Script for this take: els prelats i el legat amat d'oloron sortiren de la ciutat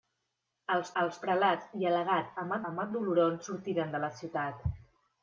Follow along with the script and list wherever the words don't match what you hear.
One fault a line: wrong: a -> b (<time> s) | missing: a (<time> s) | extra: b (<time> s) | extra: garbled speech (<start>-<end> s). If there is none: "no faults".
extra: els (1.0 s)
extra: amat (2.7 s)